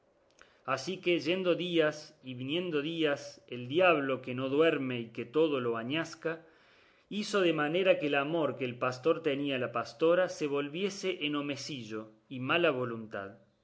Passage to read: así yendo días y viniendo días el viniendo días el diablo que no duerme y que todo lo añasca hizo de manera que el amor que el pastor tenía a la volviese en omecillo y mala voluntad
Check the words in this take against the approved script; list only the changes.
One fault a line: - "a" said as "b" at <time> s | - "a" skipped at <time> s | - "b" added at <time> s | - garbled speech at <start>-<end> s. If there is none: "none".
- "que" added at 1.0 s
- "viniendo días el" skipped at 3.7 s
- "pastora se" added at 9.7 s